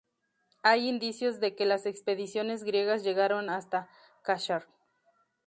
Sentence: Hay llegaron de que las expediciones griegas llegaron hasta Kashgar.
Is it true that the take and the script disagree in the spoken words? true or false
true